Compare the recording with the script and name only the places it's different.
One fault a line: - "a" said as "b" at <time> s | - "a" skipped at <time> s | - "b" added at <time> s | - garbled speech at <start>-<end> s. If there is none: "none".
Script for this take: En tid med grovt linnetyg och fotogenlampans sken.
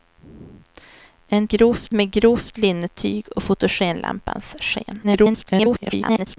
- "tid" said as "grovt" at 1.5 s
- garbled speech at 5.0-6.4 s